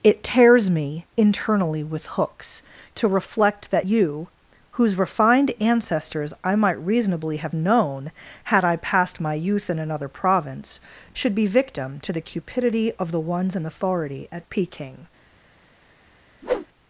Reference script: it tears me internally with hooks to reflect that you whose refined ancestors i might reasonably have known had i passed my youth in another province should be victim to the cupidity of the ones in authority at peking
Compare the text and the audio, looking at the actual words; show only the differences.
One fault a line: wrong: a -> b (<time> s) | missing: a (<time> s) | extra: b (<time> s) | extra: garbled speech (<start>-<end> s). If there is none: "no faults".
no faults